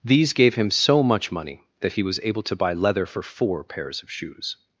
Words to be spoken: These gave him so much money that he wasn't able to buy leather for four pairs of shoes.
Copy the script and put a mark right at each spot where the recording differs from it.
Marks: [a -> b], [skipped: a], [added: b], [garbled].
These gave him so much money that he [wasn't -> was] able to buy leather for four pairs of shoes.